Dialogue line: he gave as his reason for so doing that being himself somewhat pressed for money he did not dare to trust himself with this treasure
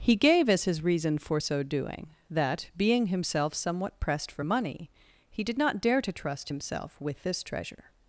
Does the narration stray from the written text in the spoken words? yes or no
no